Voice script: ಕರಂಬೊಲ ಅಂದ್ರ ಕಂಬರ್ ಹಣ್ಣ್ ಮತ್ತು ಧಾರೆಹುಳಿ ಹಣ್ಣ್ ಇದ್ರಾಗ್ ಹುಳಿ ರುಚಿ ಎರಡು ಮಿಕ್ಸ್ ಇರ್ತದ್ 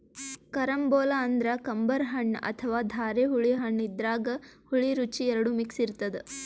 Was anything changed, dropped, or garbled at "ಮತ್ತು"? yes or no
yes